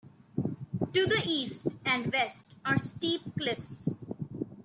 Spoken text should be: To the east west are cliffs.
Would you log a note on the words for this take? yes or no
yes